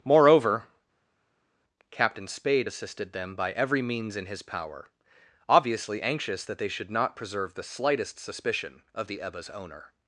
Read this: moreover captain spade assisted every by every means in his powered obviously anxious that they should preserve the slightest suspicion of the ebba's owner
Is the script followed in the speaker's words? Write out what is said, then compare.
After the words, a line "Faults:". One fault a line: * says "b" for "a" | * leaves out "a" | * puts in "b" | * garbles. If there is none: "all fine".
moreover captain spade assisted them by every means in his power obviously anxious that they should not preserve the slightest suspicion of the ebba's owner
Faults:
* says "them" for "every"
* says "power" for "powered"
* puts in "not"